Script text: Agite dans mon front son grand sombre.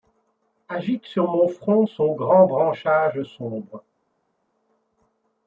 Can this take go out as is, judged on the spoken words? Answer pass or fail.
fail